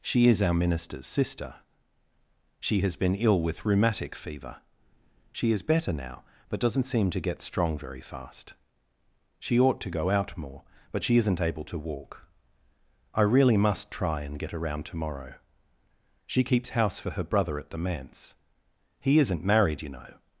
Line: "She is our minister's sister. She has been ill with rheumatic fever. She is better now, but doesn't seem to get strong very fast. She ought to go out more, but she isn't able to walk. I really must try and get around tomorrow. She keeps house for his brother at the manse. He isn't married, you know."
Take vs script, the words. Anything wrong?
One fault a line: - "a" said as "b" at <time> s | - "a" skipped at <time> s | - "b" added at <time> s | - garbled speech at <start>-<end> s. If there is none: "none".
- "his" said as "her" at 17.1 s